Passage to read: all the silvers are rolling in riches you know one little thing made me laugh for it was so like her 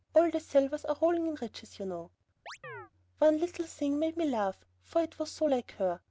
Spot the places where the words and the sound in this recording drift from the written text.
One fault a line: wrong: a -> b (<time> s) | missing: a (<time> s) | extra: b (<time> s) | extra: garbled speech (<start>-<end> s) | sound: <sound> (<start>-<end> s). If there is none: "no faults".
sound: chirp (2.5-2.9 s)